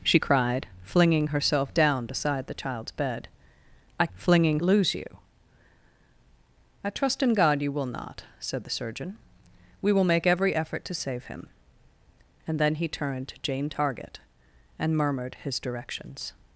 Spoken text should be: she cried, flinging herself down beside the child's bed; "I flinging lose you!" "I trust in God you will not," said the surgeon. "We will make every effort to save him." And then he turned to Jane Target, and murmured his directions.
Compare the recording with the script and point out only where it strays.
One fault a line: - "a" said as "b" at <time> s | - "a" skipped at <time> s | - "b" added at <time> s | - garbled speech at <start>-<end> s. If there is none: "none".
none